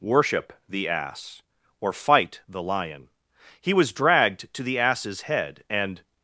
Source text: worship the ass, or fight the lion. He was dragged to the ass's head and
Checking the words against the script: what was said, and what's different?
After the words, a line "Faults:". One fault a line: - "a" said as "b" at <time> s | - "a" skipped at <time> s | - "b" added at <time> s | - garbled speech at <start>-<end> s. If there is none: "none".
worship the ass, or fight the lion. He was dragged to the ass's head and
Faults:
none